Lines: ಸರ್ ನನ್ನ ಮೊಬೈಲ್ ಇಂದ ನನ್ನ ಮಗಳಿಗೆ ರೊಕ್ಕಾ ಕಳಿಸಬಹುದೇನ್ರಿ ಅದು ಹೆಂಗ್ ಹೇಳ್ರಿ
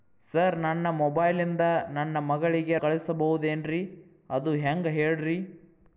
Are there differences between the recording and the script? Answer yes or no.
yes